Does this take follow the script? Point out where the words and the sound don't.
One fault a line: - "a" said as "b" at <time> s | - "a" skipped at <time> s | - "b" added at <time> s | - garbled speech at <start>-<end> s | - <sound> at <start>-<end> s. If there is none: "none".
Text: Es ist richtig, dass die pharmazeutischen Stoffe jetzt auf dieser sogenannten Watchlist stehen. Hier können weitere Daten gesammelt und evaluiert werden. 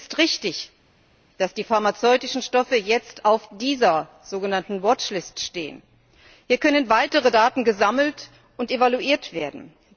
none